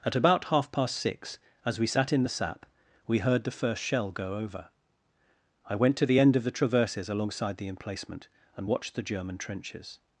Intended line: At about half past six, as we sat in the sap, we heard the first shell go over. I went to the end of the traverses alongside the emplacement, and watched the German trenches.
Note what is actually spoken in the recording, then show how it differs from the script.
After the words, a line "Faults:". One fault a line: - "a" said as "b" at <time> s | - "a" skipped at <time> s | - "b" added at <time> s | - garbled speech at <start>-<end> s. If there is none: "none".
At about half past six, as we sat in the sap, we heard the first shell go over. I went to the end of the traverses alongside the emplacement, and watched the German trenches.
Faults:
none